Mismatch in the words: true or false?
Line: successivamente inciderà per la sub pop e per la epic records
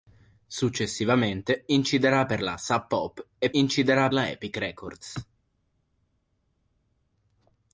true